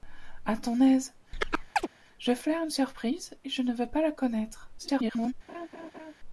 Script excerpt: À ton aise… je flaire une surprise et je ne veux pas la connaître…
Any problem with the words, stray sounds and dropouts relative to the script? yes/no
yes